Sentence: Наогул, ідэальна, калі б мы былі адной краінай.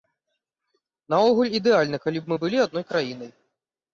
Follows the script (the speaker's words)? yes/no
yes